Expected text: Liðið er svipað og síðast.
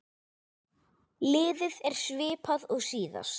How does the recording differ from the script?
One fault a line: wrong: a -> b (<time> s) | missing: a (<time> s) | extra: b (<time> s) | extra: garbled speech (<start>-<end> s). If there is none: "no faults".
no faults